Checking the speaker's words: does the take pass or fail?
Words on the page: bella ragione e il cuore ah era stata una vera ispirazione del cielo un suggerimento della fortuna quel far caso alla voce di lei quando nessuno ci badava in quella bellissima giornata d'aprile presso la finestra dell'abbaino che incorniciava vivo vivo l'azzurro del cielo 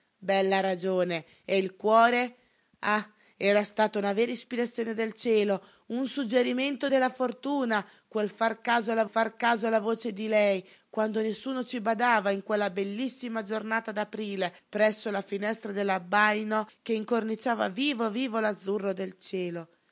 fail